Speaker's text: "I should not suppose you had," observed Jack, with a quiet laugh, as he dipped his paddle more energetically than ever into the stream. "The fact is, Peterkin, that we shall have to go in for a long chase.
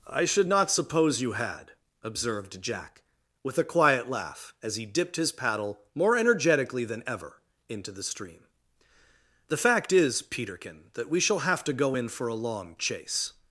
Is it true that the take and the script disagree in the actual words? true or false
false